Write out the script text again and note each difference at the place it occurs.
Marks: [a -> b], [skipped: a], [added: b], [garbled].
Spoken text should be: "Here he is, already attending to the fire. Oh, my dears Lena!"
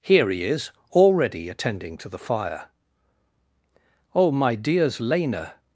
"Here he is, already attending to the fire. Oh, my dears Lena!"